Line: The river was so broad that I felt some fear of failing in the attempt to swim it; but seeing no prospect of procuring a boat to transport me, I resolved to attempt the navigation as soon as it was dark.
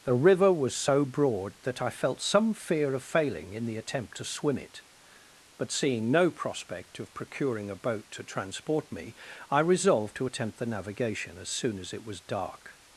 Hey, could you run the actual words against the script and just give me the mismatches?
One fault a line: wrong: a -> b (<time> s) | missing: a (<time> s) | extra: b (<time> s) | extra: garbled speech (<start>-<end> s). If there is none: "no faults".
no faults